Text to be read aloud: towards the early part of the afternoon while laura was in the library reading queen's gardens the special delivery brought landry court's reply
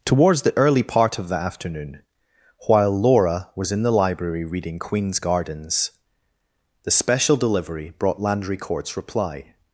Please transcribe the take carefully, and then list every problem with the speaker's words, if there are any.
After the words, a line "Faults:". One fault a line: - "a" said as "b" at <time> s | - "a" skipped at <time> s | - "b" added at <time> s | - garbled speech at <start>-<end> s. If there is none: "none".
towards the early part of the afternoon while laura was in the library reading queen's gardens the special delivery brought landry court's reply
Faults:
none